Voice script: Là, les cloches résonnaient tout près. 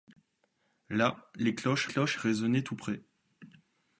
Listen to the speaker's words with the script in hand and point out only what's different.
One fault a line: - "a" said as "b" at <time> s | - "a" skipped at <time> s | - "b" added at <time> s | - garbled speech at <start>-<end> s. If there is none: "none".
- "cloches" added at 1.8 s